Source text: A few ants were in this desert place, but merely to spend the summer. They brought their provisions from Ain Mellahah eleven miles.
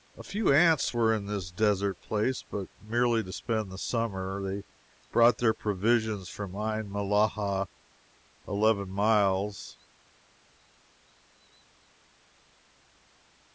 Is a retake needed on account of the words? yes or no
no